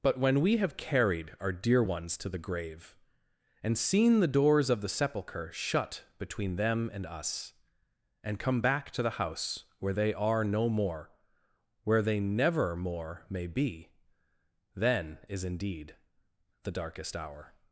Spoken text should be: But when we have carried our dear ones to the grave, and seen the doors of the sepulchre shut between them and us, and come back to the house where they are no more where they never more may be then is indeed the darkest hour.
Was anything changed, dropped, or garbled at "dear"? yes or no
no